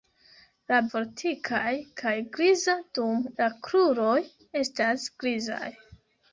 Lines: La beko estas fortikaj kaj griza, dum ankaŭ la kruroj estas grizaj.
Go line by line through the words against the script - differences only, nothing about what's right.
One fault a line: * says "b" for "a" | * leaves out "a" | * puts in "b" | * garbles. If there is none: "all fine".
* leaves out "beko estas"
* leaves out "ankaŭ"